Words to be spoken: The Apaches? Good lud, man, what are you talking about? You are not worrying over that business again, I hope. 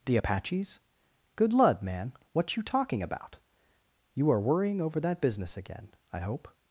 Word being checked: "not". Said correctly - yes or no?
no